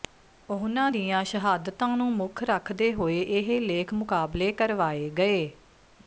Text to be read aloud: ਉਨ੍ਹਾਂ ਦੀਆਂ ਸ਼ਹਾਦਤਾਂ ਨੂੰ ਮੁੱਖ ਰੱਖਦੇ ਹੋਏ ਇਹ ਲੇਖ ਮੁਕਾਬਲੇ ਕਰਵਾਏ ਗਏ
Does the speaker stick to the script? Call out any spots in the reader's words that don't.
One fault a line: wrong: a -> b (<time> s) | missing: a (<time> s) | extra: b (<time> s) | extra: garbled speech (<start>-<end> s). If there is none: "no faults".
no faults